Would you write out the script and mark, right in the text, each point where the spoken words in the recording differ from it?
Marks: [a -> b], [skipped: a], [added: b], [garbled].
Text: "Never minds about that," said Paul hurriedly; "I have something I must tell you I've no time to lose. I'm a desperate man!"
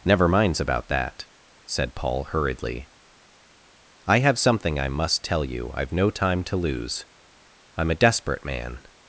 "Never minds about that," said Paul hurriedly; "I have something I must tell you I've no time to lose. I'm a desperate man!"